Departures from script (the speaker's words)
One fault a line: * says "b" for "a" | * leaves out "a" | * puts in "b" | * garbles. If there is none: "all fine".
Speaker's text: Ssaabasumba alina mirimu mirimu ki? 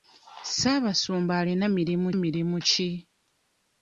all fine